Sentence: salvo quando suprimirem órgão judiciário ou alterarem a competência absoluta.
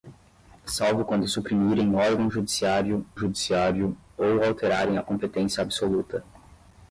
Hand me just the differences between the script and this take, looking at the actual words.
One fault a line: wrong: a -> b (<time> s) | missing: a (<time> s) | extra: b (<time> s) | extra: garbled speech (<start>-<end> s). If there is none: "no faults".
extra: judiciário (3.1 s)